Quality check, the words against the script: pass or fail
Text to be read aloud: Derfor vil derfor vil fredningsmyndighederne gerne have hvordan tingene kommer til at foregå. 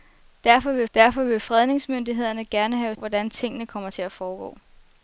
pass